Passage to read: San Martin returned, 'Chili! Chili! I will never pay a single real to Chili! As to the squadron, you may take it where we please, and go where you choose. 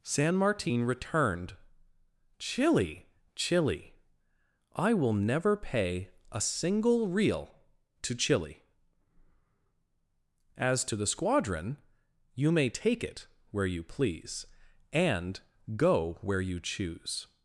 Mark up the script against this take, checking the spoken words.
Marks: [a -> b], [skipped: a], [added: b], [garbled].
San Martin returned, 'Chili! Chili! I will never pay a single real to Chili! As to the squadron, you may take it where [we -> you] please, and go where you choose.